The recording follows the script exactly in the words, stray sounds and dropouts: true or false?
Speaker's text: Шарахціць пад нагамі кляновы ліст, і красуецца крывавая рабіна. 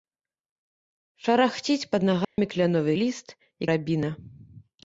false